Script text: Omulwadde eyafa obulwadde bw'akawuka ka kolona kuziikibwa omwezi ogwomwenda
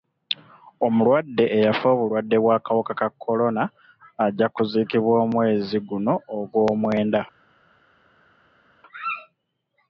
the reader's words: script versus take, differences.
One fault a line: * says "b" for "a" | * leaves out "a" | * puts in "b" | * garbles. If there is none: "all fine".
* puts in "ajja"
* puts in "guno"